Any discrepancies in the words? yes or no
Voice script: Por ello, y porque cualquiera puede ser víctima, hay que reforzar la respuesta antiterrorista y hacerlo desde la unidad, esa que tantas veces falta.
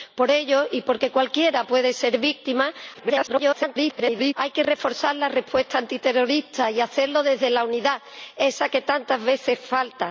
yes